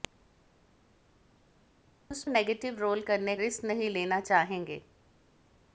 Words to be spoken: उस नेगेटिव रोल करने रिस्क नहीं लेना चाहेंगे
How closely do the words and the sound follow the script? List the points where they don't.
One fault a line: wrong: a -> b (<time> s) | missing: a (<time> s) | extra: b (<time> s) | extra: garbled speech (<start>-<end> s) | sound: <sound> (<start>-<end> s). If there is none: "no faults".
no faults